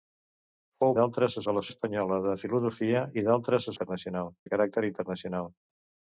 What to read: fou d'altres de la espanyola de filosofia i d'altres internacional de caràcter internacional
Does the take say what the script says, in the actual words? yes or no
yes